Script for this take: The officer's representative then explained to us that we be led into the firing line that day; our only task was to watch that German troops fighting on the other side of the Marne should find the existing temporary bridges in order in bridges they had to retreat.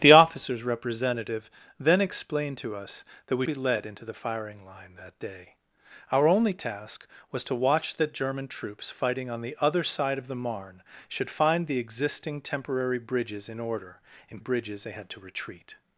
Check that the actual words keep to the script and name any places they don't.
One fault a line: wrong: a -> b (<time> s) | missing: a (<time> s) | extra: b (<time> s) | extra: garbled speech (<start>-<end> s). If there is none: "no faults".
no faults